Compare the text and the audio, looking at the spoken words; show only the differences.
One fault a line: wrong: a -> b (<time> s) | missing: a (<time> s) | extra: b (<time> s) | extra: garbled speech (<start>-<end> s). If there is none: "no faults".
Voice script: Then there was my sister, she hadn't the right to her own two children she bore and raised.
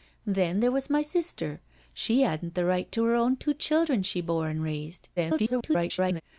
extra: garbled speech (5.2-6.2 s)